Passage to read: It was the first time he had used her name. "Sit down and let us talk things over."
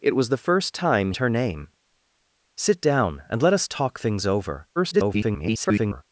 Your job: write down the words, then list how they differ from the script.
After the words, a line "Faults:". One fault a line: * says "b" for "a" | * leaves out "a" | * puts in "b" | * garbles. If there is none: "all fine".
It was the first time her name. "Sit down and let us talk things over." [garbled]
Faults:
* leaves out "he had used"
* garbles